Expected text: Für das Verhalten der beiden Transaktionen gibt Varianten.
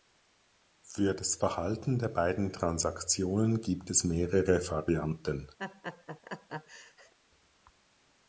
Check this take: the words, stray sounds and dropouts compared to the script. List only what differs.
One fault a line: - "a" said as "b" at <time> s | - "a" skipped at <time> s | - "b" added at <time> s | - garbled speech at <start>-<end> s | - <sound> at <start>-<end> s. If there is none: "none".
- "es mehrere" added at 3.9 s
- laugh at 5.6-7.1 s